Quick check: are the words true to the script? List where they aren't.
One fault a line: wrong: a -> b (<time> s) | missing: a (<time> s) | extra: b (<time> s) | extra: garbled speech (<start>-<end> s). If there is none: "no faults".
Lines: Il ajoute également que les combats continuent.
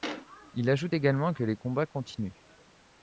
no faults